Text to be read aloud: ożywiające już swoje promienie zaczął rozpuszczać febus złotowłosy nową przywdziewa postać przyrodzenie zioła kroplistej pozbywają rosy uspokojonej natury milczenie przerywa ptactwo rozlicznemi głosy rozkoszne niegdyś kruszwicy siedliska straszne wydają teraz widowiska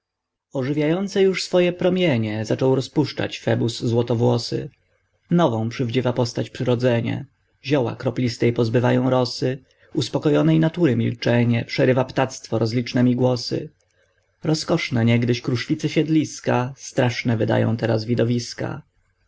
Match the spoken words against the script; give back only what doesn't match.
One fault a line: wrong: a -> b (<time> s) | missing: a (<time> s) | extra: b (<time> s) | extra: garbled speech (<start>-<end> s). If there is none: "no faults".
no faults